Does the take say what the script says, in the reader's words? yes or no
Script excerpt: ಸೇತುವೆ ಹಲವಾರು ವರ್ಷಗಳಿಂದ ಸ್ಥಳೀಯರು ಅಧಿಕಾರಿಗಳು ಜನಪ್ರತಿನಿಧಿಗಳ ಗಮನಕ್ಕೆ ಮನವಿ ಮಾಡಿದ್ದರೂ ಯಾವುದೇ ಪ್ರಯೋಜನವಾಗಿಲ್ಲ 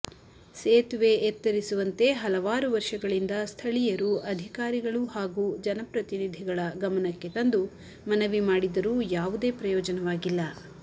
no